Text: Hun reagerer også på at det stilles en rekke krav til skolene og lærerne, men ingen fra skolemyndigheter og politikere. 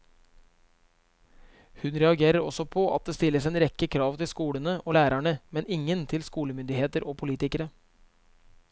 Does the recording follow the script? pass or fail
fail